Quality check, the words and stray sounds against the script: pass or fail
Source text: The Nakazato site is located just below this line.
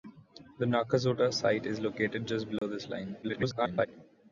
fail